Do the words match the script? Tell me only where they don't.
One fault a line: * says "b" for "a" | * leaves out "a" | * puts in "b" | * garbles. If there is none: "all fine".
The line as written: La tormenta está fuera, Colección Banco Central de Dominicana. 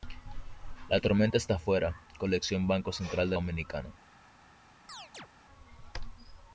all fine